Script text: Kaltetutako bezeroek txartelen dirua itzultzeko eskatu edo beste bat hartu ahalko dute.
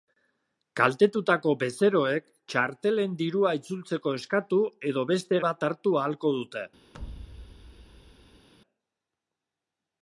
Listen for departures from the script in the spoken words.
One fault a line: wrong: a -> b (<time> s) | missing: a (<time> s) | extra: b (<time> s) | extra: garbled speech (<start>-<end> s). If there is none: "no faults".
no faults